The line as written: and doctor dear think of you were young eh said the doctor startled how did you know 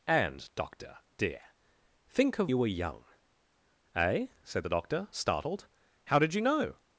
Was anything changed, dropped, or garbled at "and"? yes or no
no